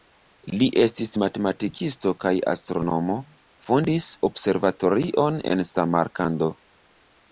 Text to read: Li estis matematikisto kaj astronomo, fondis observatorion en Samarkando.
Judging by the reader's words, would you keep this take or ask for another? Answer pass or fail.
pass